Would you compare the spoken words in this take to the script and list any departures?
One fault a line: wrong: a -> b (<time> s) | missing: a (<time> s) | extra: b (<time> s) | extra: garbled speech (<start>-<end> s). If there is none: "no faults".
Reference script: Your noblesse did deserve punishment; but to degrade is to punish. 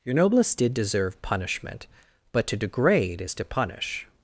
no faults